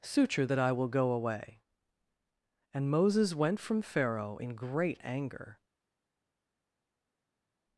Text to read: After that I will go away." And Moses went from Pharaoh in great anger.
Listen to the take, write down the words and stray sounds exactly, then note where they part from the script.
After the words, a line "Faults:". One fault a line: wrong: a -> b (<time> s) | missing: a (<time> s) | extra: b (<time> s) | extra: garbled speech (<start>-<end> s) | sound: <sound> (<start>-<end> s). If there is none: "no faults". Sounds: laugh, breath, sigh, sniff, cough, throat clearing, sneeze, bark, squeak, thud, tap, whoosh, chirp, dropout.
Suture that I will go away." And Moses went from Pharaoh in great anger.
Faults:
wrong: After -> Suture (0.0 s)